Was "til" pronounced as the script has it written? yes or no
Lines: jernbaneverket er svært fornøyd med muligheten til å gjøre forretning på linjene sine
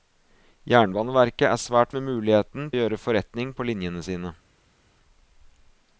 no